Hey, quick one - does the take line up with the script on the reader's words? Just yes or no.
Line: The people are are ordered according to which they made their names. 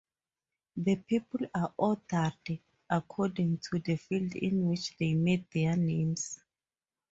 no